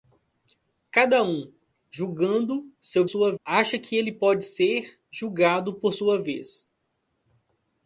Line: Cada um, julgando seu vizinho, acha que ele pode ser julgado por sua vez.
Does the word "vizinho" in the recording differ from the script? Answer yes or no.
yes